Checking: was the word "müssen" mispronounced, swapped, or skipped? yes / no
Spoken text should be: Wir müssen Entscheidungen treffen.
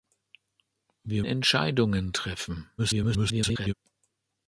yes